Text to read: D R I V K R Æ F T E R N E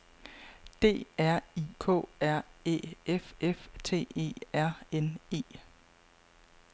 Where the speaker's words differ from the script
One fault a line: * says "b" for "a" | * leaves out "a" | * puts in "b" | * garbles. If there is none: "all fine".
* leaves out "V"
* puts in "F"